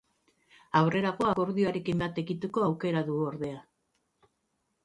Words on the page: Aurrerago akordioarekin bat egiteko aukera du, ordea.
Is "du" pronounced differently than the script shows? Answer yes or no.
no